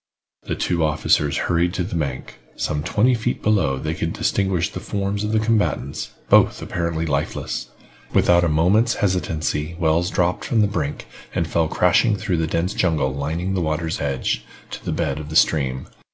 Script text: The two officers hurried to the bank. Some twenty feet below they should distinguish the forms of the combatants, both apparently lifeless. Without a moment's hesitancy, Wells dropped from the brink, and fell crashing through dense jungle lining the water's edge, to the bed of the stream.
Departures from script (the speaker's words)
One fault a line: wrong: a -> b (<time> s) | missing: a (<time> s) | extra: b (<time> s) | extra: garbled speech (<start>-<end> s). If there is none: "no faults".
wrong: should -> could (3.9 s)
extra: the (12.4 s)